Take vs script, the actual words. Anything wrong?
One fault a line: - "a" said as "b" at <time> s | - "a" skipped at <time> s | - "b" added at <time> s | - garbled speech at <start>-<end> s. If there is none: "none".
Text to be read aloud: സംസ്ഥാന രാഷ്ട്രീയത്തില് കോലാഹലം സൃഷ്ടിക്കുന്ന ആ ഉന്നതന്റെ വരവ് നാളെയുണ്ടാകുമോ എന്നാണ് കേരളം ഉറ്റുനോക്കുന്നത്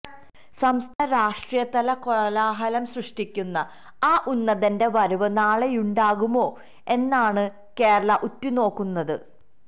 none